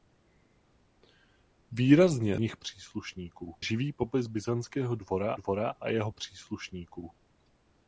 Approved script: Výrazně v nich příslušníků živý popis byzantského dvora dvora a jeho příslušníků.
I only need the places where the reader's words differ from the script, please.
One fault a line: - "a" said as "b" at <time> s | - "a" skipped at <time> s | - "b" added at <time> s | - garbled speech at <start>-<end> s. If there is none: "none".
none